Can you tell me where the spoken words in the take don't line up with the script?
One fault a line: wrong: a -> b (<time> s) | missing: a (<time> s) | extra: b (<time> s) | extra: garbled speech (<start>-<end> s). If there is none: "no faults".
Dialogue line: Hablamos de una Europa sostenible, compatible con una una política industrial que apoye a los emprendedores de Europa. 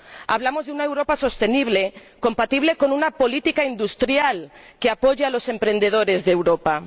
missing: una (3.1 s)